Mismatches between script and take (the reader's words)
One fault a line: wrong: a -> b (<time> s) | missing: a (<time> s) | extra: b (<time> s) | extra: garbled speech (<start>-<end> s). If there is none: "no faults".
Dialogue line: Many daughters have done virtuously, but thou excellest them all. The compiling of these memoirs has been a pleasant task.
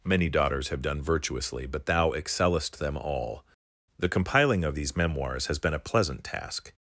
no faults